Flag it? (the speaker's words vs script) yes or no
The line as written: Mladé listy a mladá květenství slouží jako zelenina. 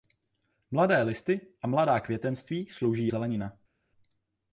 yes